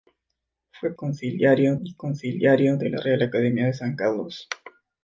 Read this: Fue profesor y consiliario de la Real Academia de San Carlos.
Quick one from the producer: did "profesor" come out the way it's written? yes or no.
no